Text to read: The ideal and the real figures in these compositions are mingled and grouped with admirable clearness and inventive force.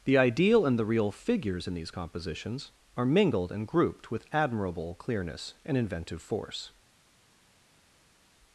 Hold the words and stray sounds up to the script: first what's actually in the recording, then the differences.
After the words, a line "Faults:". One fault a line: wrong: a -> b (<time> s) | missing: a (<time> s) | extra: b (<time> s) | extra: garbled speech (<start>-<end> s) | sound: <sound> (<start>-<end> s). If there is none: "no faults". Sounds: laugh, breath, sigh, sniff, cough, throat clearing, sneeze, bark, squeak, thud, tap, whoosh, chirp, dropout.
The ideal and the real figures in these compositions are mingled and grouped with admirable clearness and inventive force.
Faults:
no faults